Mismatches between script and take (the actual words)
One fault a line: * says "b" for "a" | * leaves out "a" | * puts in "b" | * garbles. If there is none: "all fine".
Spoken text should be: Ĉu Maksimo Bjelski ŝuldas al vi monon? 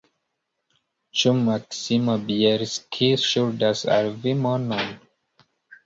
all fine